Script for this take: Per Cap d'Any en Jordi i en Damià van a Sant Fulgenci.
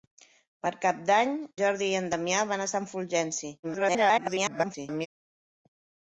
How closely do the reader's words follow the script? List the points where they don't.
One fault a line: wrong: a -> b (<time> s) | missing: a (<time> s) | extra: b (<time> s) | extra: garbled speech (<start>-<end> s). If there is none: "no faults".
missing: en (1.4 s)
extra: garbled speech (3.6-5.1 s)